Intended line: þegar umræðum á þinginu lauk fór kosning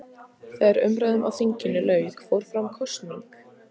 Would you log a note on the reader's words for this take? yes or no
yes